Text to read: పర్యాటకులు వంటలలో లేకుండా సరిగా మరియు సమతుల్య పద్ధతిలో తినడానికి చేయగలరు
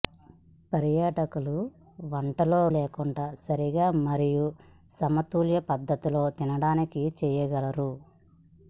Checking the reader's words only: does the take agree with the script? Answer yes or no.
yes